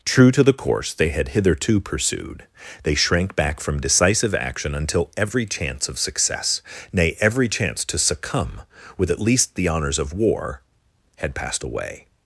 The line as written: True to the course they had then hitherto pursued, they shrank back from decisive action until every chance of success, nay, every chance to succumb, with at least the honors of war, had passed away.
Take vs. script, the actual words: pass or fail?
fail